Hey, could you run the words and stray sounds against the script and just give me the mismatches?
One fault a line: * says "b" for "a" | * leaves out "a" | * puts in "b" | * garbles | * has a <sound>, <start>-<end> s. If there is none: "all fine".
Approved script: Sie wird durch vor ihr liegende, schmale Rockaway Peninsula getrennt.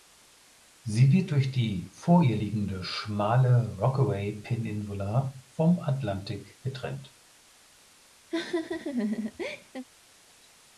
* puts in "die"
* puts in "vom Atlantik"
* has a laugh, 8.3-9.9 s